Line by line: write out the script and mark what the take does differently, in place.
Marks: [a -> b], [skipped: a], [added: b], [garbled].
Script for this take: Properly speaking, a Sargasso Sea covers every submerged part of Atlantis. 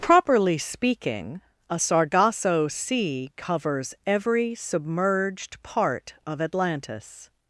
Properly speaking, a Sargasso Sea covers every submerged part of Atlantis.